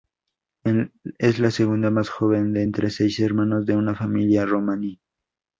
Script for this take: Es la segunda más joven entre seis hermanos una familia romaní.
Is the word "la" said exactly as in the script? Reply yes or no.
yes